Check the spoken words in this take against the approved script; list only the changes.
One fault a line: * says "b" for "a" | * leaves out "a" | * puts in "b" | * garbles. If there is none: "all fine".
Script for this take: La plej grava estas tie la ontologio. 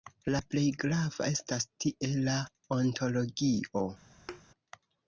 all fine